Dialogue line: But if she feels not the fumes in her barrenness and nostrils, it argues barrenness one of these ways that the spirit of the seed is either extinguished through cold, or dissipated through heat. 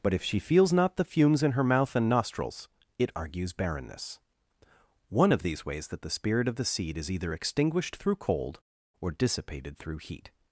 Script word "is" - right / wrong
right